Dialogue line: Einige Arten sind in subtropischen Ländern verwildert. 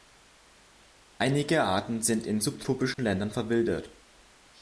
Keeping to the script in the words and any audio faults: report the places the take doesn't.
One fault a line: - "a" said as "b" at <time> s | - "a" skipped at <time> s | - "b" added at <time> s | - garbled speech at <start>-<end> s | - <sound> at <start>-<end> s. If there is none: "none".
- dropout at 2.9-3.0 s